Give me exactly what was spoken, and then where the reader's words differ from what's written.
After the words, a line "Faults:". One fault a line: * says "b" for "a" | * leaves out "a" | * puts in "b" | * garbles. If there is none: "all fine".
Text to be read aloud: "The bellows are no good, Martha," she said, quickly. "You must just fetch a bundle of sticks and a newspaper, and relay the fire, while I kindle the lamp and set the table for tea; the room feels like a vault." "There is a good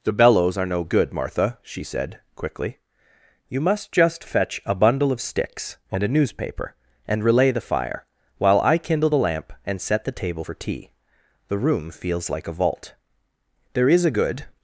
"The bellows are no good, Martha," she said, quickly. "You must just fetch a bundle of sticks and a newspaper, and relay the fire, while I kindle the lamp and set the table for tea; the room feels like a vault." "There is a good
Faults:
all fine